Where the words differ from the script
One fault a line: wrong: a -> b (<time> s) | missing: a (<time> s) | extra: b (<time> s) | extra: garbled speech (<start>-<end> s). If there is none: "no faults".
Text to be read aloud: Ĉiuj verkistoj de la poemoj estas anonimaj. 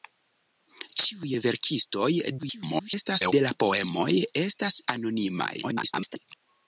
extra: garbled speech (2.4-3.3 s)
extra: garbled speech (5.6-6.2 s)